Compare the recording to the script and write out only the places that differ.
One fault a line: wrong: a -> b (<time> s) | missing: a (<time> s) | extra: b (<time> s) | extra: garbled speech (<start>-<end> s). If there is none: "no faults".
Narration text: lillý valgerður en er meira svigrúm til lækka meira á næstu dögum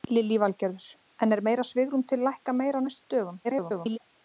extra: garbled speech (3.4-4.0 s)